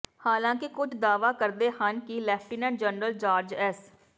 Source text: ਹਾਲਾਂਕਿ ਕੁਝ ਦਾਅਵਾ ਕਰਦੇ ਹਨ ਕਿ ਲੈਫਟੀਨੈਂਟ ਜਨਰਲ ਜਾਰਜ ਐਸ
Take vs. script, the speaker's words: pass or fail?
pass